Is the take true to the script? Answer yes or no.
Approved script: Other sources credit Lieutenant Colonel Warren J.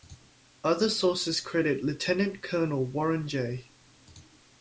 yes